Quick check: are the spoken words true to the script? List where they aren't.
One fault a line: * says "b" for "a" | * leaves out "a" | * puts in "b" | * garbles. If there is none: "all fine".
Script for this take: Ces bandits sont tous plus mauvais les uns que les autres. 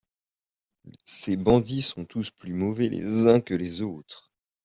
all fine